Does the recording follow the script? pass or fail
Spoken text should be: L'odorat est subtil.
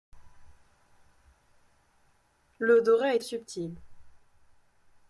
pass